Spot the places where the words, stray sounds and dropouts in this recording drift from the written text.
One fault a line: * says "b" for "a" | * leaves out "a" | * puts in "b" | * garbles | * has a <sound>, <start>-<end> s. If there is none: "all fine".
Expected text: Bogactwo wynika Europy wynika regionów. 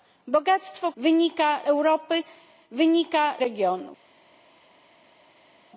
all fine